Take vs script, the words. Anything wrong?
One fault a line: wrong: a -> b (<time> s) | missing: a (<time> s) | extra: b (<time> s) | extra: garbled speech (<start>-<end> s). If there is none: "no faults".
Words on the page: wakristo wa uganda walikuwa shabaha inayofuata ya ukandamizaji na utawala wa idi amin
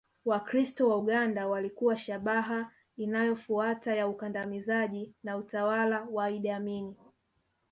no faults